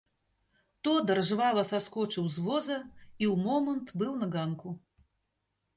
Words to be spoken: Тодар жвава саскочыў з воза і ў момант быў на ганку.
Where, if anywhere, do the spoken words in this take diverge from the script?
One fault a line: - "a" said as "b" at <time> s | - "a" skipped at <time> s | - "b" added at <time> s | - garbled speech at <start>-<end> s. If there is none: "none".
none